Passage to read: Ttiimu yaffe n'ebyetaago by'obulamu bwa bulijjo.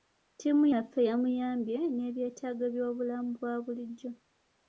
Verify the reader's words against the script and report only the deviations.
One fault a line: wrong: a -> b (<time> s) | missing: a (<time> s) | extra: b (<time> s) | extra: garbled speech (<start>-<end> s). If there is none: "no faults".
extra: yamuyambye (1.1 s)